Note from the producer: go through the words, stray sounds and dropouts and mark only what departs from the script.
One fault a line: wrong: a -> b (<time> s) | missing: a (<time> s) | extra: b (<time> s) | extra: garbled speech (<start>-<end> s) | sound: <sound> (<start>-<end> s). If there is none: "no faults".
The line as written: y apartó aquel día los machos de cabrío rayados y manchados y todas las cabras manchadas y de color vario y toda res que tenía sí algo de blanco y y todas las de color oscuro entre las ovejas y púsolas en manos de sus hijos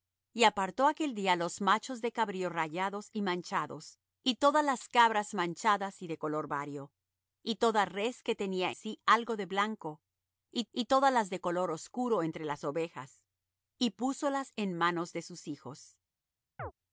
sound: chirp (16.6-16.7 s)